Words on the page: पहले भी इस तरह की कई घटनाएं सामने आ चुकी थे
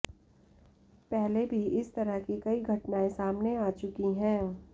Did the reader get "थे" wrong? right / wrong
wrong